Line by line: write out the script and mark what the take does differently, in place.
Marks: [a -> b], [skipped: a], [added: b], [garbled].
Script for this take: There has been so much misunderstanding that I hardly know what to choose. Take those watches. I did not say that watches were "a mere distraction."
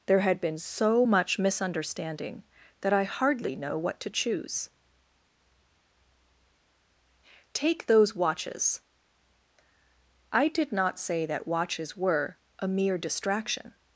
There [has -> had] been so much misunderstanding that I hardly know what to choose. Take those watches. I did not say that watches were "a mere distraction."